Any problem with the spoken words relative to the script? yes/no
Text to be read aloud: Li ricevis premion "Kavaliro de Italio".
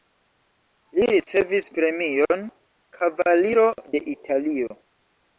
no